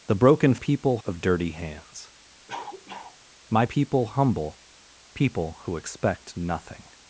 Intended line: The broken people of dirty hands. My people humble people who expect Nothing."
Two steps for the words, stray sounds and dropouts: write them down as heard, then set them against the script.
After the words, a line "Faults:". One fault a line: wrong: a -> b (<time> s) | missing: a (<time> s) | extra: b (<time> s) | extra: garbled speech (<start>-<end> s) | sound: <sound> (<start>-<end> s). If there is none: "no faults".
The broken people of dirty hands. My people humble people who expect Nothing."
Faults:
sound: cough (2.5-3.2 s)